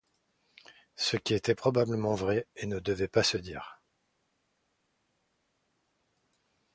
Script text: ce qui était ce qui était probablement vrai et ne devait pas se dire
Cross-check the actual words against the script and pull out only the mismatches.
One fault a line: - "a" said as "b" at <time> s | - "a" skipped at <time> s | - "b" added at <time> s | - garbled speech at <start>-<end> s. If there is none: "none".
- "ce qui était" skipped at 1.5 s